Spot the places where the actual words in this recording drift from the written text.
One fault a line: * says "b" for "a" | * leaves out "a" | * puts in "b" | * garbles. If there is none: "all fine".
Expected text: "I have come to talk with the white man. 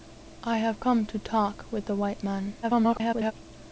* garbles